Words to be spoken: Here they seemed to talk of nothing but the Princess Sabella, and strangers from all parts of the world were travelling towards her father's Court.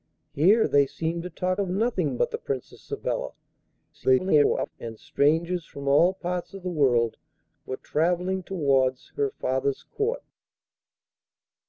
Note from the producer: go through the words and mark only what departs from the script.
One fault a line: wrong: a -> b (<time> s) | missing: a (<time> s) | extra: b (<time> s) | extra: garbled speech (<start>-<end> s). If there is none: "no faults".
extra: garbled speech (3.9-4.7 s)